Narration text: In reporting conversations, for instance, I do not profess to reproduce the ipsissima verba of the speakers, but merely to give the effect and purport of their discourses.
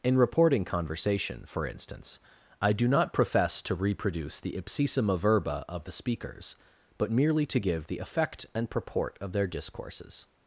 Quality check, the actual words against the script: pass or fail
fail